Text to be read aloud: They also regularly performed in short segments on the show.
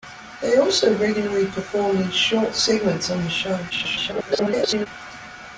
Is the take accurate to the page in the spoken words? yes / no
no